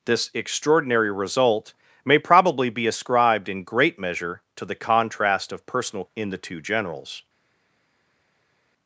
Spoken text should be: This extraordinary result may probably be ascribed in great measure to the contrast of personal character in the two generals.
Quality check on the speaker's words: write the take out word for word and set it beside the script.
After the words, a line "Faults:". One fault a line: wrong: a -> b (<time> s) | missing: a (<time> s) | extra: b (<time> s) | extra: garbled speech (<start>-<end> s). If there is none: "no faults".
This extraordinary result may probably be ascribed in great measure to the contrast of personal in the two generals.
Faults:
missing: character (6.0 s)